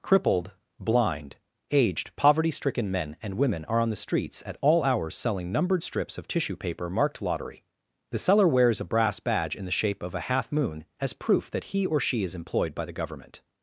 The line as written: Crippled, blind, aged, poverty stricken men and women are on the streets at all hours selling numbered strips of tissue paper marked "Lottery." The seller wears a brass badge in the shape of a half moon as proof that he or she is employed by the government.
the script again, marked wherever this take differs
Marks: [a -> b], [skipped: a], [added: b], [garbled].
Crippled, blind, aged, poverty stricken men and women are on the streets at all hours selling numbered strips of tissue paper marked "Lottery." The seller wears a brass badge in the shape of a half moon as proof that he or she is employed by the government.